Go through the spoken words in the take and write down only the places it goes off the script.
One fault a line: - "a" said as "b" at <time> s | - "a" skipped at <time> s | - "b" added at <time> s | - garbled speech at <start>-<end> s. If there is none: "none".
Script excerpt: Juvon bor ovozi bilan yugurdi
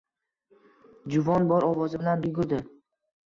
none